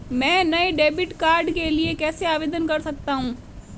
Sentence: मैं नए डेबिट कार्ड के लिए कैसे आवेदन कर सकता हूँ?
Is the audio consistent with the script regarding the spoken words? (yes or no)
yes